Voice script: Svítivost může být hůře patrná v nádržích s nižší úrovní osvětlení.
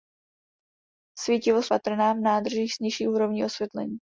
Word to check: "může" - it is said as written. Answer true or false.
false